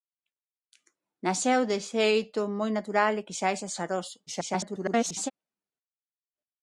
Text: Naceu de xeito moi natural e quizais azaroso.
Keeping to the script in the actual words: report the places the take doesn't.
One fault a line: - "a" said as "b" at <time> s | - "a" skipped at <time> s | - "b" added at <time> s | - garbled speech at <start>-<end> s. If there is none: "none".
- garbled speech at 4.3-5.3 s